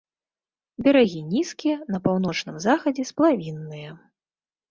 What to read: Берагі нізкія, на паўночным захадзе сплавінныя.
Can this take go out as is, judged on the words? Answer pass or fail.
pass